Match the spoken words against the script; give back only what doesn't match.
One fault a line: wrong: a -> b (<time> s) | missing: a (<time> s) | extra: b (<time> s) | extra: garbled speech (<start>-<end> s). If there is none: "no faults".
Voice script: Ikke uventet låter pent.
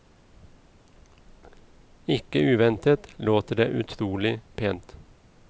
extra: det utrolig (3.5 s)